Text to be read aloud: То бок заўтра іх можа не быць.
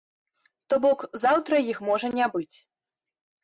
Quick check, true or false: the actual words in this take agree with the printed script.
true